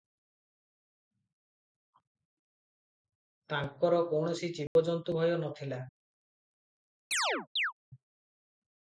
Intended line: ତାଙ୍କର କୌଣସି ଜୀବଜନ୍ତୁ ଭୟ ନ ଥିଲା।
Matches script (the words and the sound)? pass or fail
fail